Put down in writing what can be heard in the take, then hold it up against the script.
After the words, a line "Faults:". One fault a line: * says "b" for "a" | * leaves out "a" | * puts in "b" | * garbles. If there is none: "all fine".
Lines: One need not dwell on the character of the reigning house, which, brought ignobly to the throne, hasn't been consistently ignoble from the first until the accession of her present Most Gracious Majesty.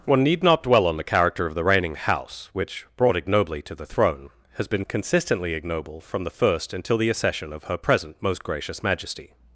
One need not dwell on the character of the reigning house, which, brought ignobly to the throne, has been consistently ignoble from the first until the accession of her present Most Gracious Majesty.
Faults:
* says "has" for "hasn't"